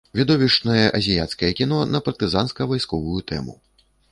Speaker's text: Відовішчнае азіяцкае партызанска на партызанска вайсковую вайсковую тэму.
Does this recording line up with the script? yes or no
no